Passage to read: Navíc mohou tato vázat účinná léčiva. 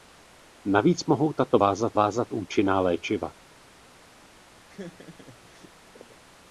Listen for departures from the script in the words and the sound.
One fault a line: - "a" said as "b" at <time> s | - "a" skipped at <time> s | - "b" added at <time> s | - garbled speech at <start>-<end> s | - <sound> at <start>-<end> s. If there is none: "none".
- "vázat" added at 1.9 s
- laugh at 4.7-5.7 s